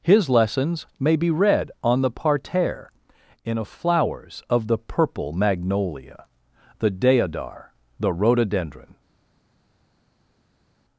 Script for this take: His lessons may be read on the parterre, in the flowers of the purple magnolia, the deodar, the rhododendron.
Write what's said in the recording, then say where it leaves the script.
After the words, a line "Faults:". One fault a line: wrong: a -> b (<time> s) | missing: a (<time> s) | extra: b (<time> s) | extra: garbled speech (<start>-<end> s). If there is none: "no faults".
His lessons may be read on the parterre, in a flowers of the purple magnolia, the deodar, the rhododendron.
Faults:
wrong: the -> a (3.6 s)